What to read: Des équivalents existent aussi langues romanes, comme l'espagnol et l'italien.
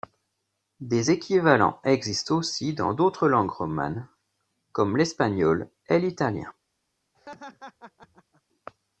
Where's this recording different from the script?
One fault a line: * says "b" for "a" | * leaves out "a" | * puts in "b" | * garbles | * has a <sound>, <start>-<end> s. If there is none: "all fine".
* puts in "dans d'autres"
* has a laugh, 7.1-8.4 s